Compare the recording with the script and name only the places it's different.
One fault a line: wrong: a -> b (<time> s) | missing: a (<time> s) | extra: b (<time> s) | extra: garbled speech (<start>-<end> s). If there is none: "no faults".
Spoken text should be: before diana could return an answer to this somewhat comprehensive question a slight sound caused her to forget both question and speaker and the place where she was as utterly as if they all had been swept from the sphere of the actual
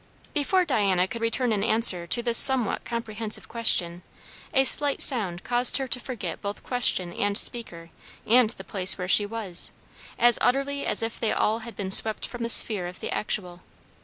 no faults